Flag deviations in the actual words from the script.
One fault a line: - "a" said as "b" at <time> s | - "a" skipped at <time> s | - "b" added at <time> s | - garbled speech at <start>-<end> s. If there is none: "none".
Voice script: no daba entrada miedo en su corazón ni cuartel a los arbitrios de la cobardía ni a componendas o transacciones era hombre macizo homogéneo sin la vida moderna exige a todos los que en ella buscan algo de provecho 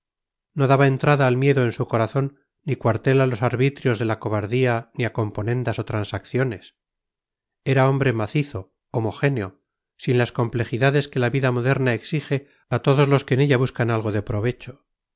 - "al" added at 1.3 s
- "las complejidades que" added at 10.2 s